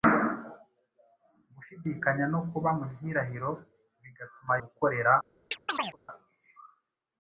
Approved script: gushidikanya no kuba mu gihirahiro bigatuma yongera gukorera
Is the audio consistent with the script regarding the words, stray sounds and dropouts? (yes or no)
no